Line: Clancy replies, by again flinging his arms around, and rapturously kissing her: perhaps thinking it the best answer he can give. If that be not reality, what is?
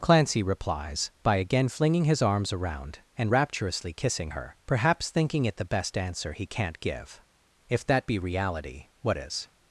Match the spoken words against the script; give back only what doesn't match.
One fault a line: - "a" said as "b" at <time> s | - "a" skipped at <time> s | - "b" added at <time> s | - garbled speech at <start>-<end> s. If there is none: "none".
- "can" said as "can't" at 6.4 s
- "not" skipped at 8.2 s